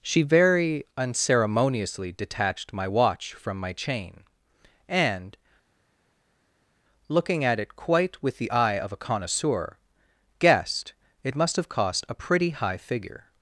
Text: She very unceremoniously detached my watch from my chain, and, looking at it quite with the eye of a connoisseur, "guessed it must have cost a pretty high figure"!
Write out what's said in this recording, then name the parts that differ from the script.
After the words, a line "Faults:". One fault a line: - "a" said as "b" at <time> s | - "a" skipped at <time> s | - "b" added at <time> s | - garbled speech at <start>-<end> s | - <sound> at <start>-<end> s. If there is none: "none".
She very unceremoniously detached my watch from my chain, and, looking at it quite with the eye of a connoisseur, "guessed it must have cost a pretty high figure"!
Faults:
none